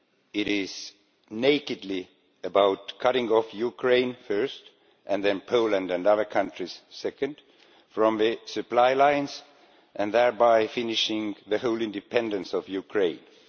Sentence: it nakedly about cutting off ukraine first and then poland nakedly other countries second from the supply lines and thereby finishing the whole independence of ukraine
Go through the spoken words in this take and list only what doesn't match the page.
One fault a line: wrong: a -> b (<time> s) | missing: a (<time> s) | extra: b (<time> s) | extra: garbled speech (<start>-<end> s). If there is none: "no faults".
extra: is (0.5 s)
wrong: nakedly -> and (5.9 s)